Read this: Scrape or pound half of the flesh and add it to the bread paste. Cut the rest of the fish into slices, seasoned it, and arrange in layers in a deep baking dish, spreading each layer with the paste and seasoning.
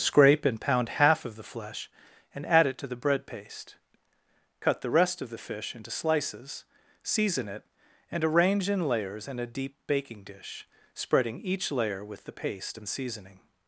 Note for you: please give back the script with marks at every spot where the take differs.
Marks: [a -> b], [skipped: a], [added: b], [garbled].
Scrape [or -> and] pound half of the flesh and add it to the bread paste. Cut the rest of the fish into slices, [seasoned -> season] it, and arrange in layers in a deep baking dish, spreading each layer with the paste and seasoning.